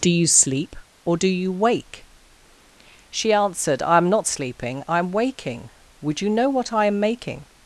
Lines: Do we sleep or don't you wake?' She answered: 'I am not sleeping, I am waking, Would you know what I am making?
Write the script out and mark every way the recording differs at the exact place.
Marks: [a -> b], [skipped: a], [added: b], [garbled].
Do [we -> you] sleep or [don't -> do] you wake?' She answered: 'I am not sleeping, I am waking, Would you know what I am making?